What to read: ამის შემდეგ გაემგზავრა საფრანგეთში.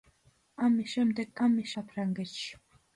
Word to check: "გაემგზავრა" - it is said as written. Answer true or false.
false